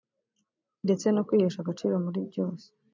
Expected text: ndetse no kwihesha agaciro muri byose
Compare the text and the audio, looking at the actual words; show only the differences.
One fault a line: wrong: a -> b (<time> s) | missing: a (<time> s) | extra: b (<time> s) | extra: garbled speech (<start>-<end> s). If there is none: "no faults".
no faults